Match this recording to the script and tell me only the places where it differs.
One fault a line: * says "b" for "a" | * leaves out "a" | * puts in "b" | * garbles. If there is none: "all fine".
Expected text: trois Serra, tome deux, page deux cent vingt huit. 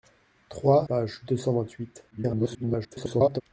* leaves out "Serra tome deux"
* garbles